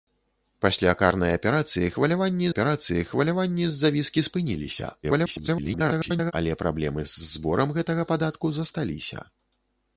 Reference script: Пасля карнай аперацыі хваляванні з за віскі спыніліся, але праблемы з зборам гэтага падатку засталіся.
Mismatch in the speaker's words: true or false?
true